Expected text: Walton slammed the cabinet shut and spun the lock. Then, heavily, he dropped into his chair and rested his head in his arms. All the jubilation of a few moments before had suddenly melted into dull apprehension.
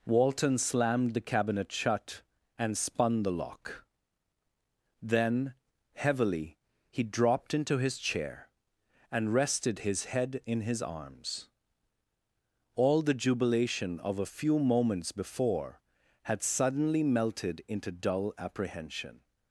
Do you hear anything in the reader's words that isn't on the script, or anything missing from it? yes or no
no